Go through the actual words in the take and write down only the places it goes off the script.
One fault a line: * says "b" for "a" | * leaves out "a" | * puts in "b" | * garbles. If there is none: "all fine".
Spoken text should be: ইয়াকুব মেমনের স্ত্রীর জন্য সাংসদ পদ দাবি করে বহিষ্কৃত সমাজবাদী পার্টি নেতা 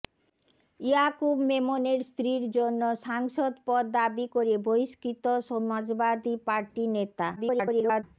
* garbles